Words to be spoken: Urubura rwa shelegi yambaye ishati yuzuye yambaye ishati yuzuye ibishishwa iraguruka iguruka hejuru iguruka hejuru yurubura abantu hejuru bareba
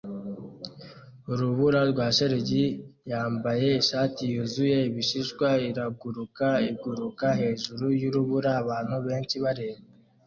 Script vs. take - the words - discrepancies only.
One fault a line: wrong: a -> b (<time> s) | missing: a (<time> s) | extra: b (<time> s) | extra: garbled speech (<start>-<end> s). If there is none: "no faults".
missing: yambaye ishati yuzuye (4.8 s)
missing: iguruka hejuru (7.8 s)
wrong: hejuru -> benshi (9.1 s)